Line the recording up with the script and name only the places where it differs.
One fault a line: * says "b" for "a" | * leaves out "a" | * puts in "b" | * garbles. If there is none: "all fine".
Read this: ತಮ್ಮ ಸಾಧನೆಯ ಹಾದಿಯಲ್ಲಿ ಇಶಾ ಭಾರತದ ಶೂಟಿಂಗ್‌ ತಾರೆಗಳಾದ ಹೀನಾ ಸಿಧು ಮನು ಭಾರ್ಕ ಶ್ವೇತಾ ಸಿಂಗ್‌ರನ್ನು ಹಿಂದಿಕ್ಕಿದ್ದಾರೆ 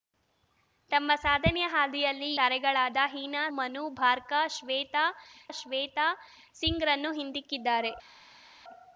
* leaves out "ಇಶಾ ಭಾರತದ ಶೂಟಿಂಗ್"
* leaves out "ಸಿಧು"
* puts in "ಶ್ವೇತಾ"